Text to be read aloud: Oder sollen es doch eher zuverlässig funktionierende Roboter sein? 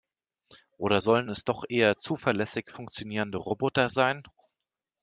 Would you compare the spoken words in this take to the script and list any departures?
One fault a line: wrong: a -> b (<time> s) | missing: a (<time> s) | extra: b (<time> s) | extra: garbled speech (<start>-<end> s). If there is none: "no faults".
no faults